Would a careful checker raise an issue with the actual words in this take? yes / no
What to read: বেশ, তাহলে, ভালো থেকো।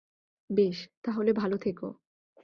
no